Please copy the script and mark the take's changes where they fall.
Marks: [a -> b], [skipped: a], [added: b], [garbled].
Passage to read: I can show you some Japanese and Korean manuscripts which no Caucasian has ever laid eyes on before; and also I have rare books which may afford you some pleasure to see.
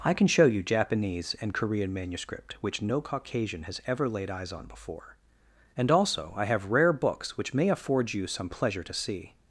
I can show you [skipped: some] Japanese and Korean [manuscripts -> manuscript] which no Caucasian has ever laid eyes on before; and also I have rare books which may afford you some pleasure to see.